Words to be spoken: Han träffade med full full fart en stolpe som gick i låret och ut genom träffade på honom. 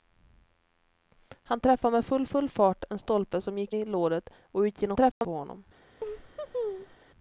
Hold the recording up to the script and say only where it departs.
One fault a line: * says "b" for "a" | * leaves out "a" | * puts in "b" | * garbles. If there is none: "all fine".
all fine